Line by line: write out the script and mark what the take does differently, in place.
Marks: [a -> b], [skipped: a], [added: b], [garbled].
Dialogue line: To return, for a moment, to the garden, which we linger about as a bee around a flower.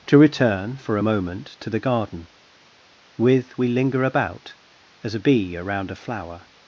To return, for a moment, to the garden, [which -> with] we linger about as a bee around a flower.